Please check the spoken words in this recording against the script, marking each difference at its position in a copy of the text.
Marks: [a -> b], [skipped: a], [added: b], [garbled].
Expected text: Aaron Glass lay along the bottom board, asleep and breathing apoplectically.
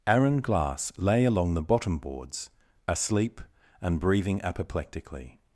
Aaron Glass lay along the bottom [board, -> boards] asleep and breathing apoplectically.